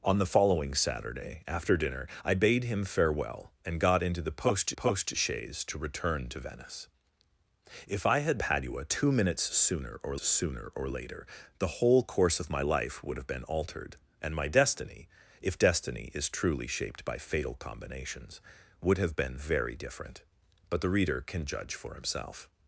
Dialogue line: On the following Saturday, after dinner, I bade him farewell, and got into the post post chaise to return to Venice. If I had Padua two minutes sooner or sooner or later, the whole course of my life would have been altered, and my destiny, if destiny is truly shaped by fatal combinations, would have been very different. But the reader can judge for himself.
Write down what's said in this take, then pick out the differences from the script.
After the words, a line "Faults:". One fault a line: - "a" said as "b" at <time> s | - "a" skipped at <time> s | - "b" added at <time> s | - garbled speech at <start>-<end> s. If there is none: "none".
On the following Saturday, after dinner, I bade him farewell, and got into the post post chaise to return to Venice. If I had Padua two minutes sooner or sooner or later, the whole course of my life would have been altered, and my destiny, if destiny is truly shaped by fatal combinations, would have been very different. But the reader can judge for himself.
Faults:
none